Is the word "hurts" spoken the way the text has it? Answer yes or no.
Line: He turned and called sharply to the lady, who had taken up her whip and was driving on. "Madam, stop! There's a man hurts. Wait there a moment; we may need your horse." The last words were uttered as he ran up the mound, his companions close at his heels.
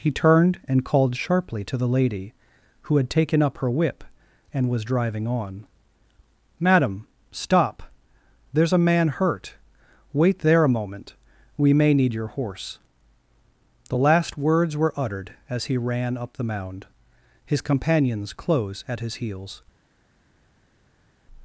no